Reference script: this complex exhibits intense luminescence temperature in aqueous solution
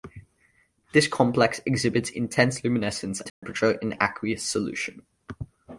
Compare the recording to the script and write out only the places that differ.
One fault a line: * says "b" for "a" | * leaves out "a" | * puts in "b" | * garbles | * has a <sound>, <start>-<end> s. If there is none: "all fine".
* has a dropout, 3.3-3.4 s